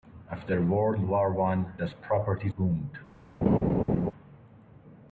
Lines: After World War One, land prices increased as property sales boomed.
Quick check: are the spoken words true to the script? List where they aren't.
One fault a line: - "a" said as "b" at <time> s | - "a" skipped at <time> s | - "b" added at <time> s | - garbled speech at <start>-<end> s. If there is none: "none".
- "land prices increased" skipped at 1.8 s
- "sales" skipped at 2.5 s